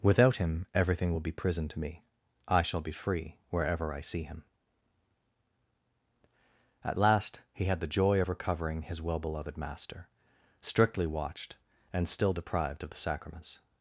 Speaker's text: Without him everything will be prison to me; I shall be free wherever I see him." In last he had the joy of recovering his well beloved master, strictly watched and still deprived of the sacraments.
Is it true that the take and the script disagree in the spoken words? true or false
true